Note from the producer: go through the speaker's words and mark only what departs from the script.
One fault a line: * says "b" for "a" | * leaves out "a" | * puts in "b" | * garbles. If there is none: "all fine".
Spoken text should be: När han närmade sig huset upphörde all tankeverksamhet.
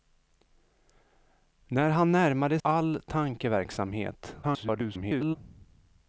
* leaves out "sig huset upphörde"
* garbles